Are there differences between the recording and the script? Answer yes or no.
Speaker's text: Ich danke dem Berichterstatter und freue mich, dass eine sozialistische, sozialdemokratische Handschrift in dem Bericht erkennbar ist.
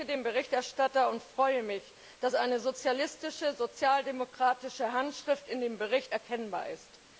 no